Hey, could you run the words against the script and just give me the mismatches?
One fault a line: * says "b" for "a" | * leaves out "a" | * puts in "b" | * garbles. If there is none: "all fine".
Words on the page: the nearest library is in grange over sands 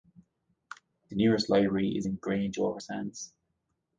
all fine